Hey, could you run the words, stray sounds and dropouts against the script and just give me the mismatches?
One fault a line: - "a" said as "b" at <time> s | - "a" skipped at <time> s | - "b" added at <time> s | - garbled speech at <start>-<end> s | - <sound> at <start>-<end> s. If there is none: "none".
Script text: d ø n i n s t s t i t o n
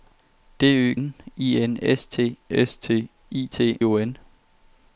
none